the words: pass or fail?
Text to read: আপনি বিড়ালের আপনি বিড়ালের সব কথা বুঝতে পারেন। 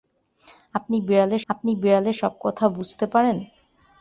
pass